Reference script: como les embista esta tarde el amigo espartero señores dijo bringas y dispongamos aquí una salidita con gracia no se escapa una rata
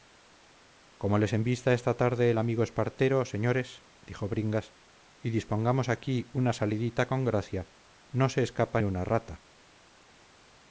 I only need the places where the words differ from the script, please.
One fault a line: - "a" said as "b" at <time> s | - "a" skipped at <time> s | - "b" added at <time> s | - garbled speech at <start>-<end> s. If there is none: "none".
none